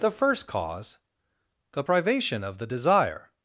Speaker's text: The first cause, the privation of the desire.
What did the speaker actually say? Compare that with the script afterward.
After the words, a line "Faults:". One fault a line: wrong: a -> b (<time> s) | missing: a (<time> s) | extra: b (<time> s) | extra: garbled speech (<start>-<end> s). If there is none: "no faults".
The first cause, the privation of the desire.
Faults:
no faults